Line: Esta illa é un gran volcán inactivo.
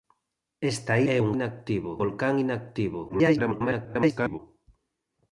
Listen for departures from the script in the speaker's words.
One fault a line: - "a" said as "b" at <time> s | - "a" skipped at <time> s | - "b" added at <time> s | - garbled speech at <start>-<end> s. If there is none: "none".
- "illa" skipped at 0.9 s
- "gran" said as "inactivo" at 1.4 s
- garbled speech at 3.1-4.4 s